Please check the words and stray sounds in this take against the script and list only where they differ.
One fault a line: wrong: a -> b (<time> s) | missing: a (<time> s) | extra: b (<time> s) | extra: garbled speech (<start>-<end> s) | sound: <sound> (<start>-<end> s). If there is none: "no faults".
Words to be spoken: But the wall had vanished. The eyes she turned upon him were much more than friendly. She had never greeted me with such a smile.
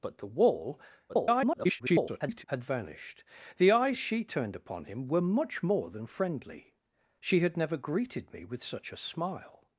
extra: garbled speech (1.1-2.4 s)